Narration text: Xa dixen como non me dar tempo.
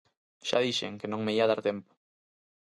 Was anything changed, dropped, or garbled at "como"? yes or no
yes